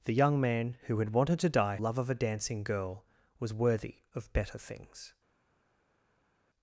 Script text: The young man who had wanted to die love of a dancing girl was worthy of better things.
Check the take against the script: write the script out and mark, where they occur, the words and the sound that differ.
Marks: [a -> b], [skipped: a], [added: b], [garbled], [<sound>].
The young man who had wanted to die love of a dancing girl was worthy of better things.